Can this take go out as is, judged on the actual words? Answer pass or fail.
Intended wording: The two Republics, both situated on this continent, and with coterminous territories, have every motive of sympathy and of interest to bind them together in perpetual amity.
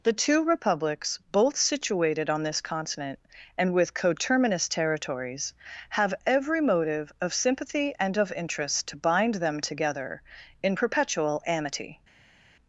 pass